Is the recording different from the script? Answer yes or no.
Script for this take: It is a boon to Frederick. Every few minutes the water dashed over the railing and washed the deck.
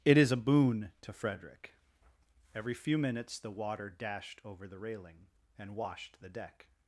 no